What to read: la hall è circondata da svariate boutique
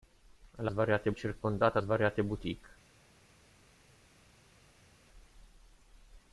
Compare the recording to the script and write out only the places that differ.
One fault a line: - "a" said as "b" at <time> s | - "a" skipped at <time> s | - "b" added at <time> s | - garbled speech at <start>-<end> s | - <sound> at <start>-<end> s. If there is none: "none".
- "hall" said as "svariate" at 0.7 s
- "da" skipped at 1.8 s